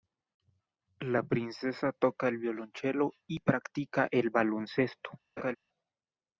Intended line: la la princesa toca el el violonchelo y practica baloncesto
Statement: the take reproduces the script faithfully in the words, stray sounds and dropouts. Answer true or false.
false